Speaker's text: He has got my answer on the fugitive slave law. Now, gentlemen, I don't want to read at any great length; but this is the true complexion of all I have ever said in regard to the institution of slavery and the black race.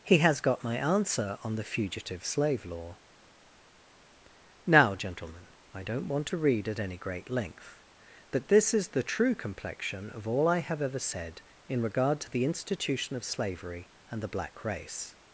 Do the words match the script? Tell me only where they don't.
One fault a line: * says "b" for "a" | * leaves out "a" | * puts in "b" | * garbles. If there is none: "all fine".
all fine